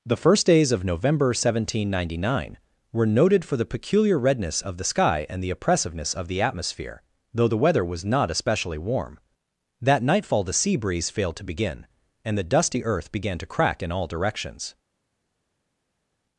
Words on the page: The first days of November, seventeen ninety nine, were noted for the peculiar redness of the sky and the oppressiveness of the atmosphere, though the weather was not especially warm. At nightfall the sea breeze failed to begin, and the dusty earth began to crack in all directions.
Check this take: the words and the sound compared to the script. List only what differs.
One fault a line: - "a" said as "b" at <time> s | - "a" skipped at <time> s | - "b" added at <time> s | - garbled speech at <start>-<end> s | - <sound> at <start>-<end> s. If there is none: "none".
- "At" said as "That" at 9.8 s